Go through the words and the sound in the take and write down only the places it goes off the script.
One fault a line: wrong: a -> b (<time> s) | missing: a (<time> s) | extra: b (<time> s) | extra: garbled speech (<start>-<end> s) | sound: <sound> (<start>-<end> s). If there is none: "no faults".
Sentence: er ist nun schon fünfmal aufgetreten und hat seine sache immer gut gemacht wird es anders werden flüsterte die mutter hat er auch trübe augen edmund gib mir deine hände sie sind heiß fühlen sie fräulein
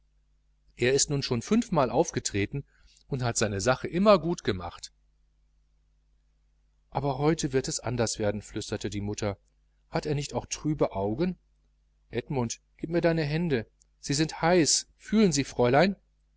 extra: aber heute (6.9 s)
extra: nicht (10.1 s)